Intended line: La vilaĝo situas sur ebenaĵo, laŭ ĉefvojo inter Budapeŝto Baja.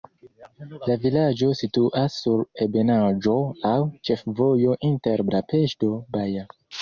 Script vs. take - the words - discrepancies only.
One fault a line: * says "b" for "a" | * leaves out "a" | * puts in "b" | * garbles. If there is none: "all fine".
all fine